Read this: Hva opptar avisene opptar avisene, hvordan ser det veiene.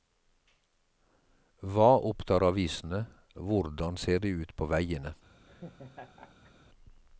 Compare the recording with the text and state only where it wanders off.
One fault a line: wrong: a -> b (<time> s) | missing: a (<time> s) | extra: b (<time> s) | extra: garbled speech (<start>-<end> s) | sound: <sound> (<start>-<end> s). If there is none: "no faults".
missing: opptar avisene (3.0 s)
extra: ut på (4.4 s)
sound: laugh (5.5-6.5 s)